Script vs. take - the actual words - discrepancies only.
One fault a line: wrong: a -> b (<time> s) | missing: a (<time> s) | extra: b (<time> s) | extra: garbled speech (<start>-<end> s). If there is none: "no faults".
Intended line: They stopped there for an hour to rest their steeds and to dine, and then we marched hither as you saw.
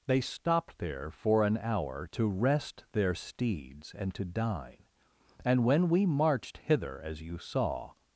wrong: then -> when (5.6 s)